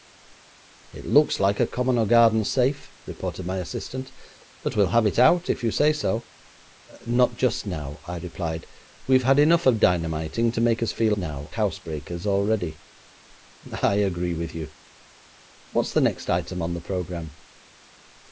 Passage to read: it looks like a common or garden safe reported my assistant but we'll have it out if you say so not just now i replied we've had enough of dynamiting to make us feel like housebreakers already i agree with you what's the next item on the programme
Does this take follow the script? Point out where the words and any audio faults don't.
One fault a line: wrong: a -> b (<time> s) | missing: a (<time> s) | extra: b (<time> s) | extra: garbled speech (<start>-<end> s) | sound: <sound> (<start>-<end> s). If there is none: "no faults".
wrong: like -> now (11.1 s)